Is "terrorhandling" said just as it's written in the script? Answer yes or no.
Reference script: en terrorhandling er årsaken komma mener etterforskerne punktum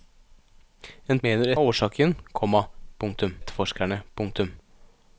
no